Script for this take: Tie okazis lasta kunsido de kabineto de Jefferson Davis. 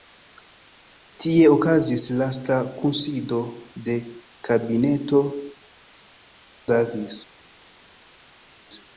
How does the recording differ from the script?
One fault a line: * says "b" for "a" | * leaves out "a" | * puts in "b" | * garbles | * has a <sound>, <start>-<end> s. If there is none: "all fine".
* leaves out "de Jefferson"